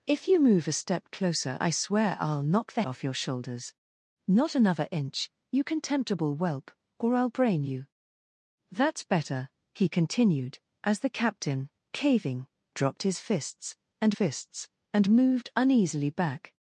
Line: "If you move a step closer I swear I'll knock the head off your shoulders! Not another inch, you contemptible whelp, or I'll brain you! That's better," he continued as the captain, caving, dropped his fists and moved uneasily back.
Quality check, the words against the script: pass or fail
fail